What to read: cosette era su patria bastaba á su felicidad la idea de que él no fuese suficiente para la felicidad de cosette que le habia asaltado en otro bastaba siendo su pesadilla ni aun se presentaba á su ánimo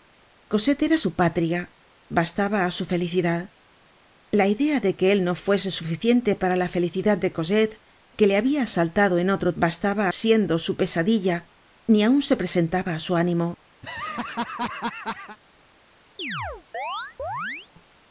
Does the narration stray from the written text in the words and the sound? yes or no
yes